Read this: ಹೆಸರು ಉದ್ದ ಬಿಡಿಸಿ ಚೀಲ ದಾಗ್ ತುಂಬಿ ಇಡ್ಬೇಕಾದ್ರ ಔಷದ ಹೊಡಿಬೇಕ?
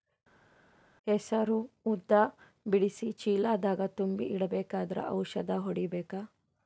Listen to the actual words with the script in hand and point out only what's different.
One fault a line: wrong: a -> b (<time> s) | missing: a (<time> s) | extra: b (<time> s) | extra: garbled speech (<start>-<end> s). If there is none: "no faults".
no faults